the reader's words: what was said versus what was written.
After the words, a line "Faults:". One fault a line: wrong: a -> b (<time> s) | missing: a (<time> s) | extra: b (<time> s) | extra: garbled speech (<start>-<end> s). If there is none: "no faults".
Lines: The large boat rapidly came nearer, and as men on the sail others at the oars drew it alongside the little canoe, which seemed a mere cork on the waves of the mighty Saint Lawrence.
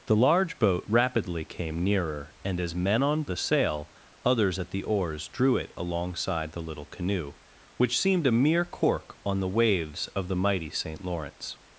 The large boat rapidly came nearer, and as men on the sail others at the oars drew it alongside the little canoe, which seemed a mere cork on the waves of the mighty Saint Lawrence.
Faults:
no faults